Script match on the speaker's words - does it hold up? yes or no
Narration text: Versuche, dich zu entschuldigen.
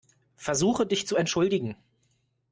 yes